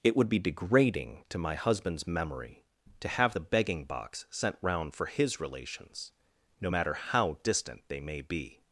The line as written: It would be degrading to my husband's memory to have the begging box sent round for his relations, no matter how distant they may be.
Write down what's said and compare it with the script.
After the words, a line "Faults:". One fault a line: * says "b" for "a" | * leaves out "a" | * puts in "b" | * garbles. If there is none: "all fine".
It would be degrading to my husband's memory to have the begging box sent round for his relations, no matter how distant they may be.
Faults:
all fine